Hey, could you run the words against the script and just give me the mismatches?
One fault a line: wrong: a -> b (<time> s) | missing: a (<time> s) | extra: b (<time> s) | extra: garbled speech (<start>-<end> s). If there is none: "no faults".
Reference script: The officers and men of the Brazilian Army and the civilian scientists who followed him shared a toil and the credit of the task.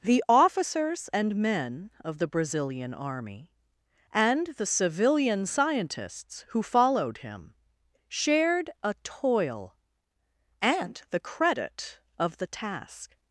no faults